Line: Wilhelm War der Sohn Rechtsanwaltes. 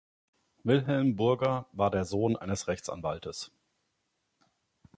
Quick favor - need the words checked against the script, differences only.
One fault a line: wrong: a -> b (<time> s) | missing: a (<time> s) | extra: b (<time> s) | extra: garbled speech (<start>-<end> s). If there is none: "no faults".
extra: Burger (1.1 s)
extra: eines (2.3 s)